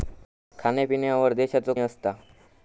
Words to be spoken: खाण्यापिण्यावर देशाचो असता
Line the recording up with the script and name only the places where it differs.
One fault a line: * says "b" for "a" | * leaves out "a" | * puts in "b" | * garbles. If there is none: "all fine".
all fine